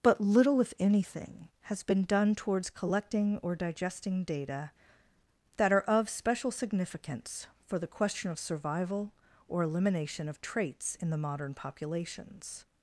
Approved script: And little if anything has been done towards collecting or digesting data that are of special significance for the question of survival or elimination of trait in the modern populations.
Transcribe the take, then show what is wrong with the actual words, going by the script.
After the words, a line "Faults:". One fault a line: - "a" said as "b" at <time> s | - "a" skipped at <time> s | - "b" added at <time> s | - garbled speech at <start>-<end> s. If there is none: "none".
But little if anything has been done towards collecting or digesting data that are of special significance for the question of survival or elimination of traits in the modern populations.
Faults:
- "And" said as "But" at 0.0 s
- "trait" said as "traits" at 10.4 s